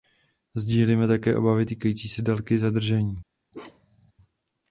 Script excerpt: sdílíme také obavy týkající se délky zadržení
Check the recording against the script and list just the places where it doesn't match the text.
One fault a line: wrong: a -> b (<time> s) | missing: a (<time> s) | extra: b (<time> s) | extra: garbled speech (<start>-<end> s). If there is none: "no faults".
no faults